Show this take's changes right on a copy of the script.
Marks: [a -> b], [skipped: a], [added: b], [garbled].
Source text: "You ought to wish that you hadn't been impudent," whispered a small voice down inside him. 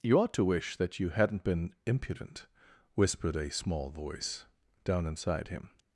"You ought to wish that you hadn't been impudent," whispered a small voice down inside him.